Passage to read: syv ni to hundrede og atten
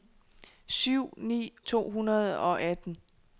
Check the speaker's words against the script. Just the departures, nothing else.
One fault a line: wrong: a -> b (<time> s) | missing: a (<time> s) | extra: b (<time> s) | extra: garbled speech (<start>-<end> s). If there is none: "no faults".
no faults